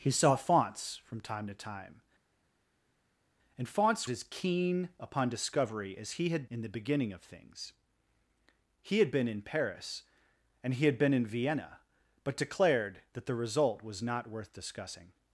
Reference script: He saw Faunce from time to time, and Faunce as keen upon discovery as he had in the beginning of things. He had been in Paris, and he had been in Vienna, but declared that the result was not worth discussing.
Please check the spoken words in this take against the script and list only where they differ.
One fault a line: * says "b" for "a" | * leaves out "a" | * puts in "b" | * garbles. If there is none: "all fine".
all fine